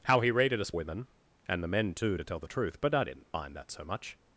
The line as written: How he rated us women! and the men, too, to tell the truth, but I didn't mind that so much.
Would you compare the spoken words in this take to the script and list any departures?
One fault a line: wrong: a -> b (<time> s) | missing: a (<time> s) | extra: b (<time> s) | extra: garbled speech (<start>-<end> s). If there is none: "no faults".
no faults